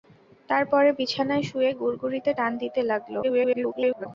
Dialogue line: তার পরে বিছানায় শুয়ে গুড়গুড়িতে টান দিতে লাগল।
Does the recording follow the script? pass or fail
fail